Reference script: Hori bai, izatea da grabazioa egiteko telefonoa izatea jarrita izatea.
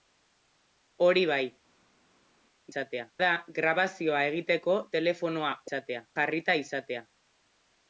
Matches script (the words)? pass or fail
pass